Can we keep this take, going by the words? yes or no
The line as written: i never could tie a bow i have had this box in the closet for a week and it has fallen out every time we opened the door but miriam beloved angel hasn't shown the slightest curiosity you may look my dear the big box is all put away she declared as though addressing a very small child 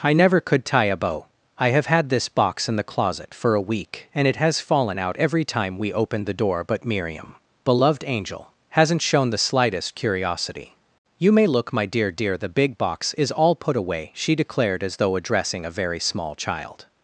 no